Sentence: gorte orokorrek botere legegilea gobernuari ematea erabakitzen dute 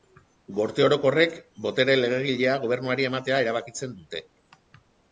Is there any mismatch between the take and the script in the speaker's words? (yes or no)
no